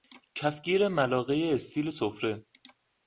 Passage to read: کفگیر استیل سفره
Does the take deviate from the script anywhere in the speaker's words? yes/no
yes